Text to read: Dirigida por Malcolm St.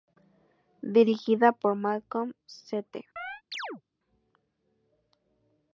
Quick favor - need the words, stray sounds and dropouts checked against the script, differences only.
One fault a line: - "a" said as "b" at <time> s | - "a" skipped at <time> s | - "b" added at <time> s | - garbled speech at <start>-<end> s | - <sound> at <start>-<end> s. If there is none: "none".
- chirp at 3.2-3.8 s